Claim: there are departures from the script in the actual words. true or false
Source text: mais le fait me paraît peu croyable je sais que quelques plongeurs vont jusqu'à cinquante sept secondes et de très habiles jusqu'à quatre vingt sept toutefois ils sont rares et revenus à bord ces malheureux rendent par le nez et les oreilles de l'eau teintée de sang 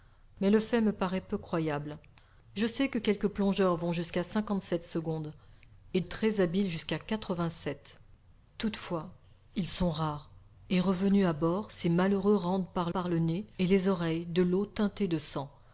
true